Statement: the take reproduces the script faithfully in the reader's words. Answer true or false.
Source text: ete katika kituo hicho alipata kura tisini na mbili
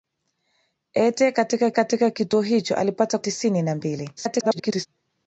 false